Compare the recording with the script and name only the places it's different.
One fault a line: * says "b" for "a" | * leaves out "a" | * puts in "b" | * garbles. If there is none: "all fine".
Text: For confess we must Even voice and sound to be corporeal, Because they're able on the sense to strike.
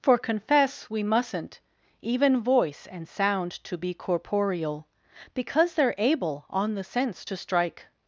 * says "mustn't" for "must"